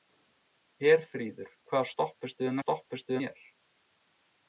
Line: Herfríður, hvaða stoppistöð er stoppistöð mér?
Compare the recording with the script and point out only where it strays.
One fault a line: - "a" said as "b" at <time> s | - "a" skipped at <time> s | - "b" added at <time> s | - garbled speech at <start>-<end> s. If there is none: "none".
none